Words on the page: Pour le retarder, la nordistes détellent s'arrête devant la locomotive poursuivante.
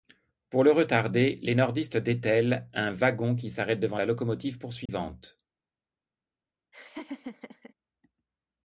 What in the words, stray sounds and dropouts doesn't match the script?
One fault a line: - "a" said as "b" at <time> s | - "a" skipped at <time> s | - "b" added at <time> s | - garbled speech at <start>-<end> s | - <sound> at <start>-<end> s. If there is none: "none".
- "la" said as "les" at 1.4 s
- "un wagon qui" added at 2.7 s
- dropout at 4.9-4.9 s
- laugh at 6.7-7.7 s